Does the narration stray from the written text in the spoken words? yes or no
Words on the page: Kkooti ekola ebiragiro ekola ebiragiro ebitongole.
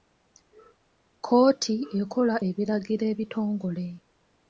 yes